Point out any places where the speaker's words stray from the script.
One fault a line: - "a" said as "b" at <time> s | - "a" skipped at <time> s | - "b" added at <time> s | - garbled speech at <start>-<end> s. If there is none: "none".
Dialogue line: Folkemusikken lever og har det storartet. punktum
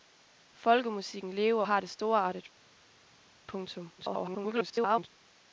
- "og" skipped at 1.6 s
- garbled speech at 4.0-5.1 s